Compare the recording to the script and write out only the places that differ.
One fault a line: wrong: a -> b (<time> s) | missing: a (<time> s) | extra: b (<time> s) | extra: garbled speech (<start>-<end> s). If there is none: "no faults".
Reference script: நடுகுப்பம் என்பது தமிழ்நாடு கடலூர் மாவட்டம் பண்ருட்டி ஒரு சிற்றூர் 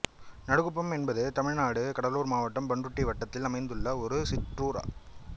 extra: வட்டத்தில் அமைந்துள்ள (3.1 s)